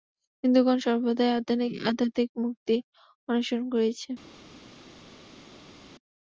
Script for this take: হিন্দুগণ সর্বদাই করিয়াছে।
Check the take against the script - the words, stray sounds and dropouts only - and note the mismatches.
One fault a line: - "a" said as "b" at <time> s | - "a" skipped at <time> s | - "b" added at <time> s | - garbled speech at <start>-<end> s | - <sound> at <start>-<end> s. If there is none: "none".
- "আধ্যাত্মিক মুক্তি অন্বেষণ" added at 1.9 s